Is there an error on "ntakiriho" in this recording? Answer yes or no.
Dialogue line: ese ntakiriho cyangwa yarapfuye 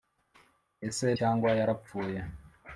yes